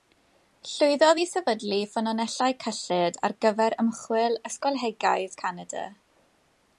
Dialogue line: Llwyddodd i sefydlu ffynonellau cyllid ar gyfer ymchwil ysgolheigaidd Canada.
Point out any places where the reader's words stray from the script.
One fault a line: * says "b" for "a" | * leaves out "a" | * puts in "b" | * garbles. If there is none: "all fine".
all fine